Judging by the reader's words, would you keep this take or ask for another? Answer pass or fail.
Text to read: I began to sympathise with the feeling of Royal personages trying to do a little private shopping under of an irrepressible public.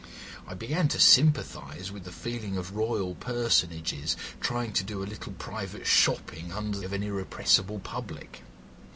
pass